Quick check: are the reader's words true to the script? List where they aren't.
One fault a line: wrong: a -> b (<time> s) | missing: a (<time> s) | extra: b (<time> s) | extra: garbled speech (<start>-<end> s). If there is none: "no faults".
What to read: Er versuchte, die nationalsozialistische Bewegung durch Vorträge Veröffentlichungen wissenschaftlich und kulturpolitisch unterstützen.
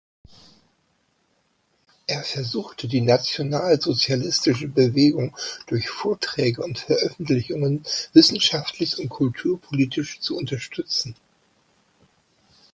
extra: und (6.6 s)
extra: zu (10.2 s)